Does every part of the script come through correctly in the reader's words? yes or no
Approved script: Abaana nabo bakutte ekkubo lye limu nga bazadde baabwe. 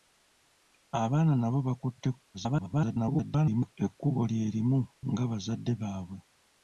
no